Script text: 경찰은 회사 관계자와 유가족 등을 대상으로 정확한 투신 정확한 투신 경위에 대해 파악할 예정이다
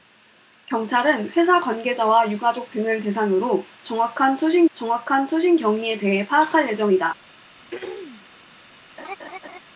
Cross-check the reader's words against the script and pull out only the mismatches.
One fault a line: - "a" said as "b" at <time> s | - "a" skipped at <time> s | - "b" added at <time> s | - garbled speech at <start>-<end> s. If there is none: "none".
none